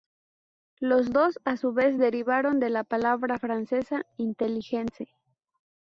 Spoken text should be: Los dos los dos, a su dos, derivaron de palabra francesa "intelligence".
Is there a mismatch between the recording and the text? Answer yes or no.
yes